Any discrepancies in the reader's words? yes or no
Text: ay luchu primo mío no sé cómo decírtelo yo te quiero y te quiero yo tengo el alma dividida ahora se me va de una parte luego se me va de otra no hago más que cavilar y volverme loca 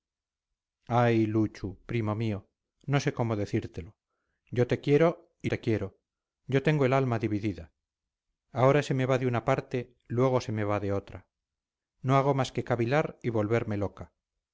no